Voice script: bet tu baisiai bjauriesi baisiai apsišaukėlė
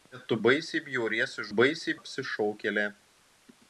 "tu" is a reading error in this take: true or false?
false